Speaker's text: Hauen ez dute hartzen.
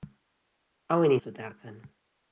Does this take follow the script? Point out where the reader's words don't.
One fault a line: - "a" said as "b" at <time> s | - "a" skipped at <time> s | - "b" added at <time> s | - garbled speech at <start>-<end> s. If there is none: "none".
none